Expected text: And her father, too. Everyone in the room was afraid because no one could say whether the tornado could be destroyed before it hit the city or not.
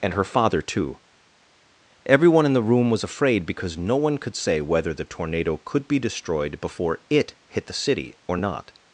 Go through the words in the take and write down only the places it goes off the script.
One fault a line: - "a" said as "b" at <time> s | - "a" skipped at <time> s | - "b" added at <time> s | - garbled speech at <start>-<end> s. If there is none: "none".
none